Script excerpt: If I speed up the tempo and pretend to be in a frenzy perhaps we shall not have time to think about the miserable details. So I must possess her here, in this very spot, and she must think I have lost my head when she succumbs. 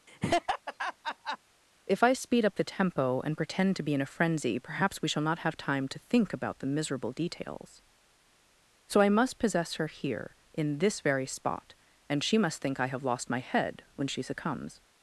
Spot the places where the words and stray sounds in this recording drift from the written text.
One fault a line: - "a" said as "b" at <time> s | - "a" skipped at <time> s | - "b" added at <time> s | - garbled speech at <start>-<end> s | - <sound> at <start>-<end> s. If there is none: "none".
- laugh at 0.1-1.4 s